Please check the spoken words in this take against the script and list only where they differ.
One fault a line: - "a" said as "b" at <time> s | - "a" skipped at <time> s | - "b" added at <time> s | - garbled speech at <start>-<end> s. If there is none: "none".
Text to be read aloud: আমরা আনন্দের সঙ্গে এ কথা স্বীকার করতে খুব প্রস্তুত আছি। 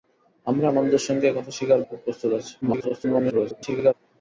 - "করতে" skipped at 1.8 s
- garbled speech at 2.6-3.9 s